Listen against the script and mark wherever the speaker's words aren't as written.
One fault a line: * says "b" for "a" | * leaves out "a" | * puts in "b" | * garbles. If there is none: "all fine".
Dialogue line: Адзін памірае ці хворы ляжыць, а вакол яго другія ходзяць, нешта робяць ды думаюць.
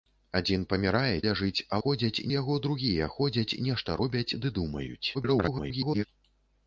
* leaves out "ці хворы"
* says "ходзяць" for "вакол"
* garbles